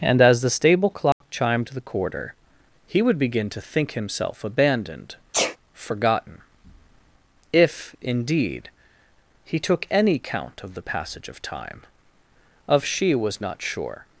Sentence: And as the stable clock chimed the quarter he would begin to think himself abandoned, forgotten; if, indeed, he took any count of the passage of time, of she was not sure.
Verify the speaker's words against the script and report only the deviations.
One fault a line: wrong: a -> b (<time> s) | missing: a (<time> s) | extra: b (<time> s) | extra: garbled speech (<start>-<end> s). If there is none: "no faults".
no faults